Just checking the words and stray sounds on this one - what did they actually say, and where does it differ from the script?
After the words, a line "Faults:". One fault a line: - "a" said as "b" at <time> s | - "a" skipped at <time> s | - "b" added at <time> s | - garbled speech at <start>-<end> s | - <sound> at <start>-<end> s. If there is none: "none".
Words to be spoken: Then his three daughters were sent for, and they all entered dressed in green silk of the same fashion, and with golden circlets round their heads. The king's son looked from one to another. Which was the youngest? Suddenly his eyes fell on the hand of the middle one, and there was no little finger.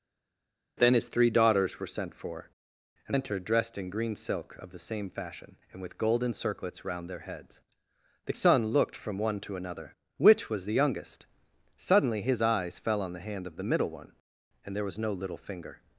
Then his three daughters were sent for, and entered dressed in green silk of the same fashion, and with golden circlets round their heads. The son looked from one to another. Which was the youngest? Suddenly his eyes fell on the hand of the middle one, and there was no little finger.
Faults:
- "they all" skipped at 3.2 s
- "king's" skipped at 8.3 s